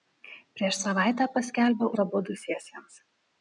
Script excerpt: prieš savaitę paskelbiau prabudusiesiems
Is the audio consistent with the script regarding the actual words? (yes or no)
yes